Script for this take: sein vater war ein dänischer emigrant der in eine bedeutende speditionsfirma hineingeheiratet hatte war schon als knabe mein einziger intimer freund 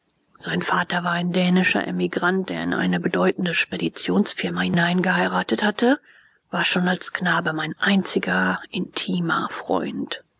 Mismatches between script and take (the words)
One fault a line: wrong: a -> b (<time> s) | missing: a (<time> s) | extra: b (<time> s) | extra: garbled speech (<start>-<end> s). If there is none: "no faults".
no faults